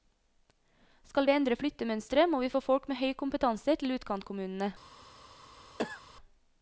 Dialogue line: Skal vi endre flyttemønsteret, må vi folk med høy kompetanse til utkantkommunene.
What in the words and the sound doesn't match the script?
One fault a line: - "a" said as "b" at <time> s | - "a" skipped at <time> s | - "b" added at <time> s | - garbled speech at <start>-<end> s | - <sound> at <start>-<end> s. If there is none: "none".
- "få" added at 2.5 s
- cough at 5.8-6.0 s